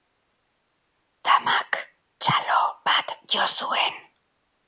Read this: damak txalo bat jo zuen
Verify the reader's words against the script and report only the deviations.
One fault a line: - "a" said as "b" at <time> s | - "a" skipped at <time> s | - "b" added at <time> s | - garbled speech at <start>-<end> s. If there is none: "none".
none